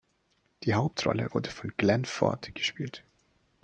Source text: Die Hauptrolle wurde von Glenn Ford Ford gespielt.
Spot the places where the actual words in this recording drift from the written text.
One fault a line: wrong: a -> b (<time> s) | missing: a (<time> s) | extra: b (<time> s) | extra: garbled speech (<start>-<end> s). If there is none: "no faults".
missing: Ford (2.5 s)